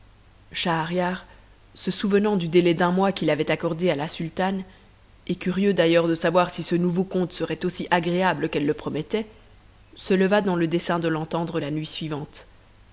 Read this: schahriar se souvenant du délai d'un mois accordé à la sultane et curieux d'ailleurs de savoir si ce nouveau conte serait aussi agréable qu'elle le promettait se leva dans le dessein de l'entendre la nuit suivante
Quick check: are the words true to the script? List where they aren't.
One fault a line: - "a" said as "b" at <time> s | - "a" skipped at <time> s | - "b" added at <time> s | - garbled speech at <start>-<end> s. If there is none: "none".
- "qu'il avait" added at 3.1 s